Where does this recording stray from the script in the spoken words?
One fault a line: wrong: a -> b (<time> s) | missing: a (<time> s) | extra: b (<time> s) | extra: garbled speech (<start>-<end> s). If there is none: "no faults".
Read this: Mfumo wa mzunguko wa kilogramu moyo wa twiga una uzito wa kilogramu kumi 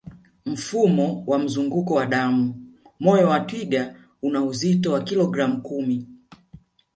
wrong: kilogramu -> damu (2.1 s)